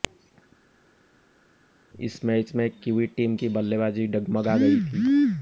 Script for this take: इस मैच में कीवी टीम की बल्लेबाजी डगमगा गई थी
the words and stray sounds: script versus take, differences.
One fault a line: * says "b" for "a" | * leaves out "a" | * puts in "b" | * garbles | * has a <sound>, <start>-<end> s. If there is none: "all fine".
all fine